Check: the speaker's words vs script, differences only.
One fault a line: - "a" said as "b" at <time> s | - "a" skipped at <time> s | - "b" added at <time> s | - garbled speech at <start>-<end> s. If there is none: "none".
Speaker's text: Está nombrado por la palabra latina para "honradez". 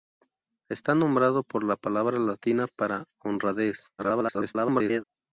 - garbled speech at 4.0-5.0 s